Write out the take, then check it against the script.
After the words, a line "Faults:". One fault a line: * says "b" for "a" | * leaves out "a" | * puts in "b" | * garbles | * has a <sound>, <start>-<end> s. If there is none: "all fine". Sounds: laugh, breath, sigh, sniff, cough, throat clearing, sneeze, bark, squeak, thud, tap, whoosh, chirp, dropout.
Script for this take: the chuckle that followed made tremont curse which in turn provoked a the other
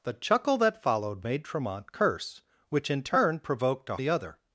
the chuckle that followed made tremont curse which in turn provoked a the other
Faults:
all fine